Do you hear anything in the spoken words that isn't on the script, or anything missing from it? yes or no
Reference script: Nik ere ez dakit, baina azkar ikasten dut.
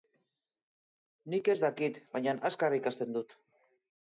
yes